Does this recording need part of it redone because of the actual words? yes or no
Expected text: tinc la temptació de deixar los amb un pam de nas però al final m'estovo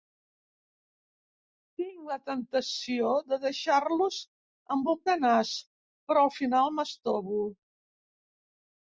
yes